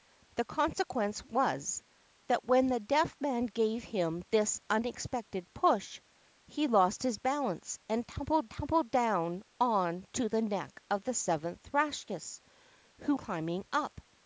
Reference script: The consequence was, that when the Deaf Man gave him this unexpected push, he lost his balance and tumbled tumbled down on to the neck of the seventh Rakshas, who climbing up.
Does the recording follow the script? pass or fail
pass